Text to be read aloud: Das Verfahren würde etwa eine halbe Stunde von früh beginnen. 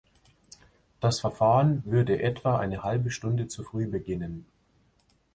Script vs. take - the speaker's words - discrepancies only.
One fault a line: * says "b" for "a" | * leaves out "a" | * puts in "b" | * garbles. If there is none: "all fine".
* says "zu" for "von"